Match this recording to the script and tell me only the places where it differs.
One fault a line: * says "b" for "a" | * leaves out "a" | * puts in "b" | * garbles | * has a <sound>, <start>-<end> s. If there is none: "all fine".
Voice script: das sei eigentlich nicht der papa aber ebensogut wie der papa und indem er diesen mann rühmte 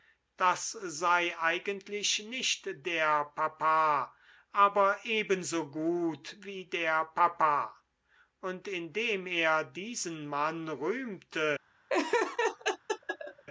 * has a laugh, 11.9-13.4 s